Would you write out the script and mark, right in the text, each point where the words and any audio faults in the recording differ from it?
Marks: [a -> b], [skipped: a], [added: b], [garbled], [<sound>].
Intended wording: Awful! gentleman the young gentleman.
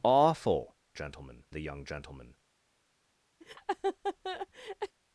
Awful! gentleman the young gentleman. [laugh]